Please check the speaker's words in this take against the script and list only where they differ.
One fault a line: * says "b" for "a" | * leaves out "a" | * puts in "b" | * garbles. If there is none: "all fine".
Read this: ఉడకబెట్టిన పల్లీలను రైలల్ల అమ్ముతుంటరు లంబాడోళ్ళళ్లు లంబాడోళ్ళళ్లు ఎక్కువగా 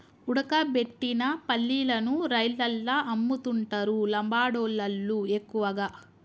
* leaves out "లంబాడోళ్ళళ్లు"